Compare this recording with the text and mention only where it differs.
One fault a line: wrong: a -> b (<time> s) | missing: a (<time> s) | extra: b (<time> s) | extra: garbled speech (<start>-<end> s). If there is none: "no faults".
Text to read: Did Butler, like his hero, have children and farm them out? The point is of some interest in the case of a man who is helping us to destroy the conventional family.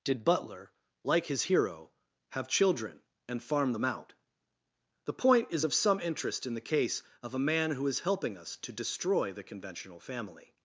no faults